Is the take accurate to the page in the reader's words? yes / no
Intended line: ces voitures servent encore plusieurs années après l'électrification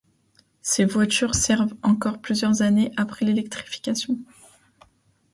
yes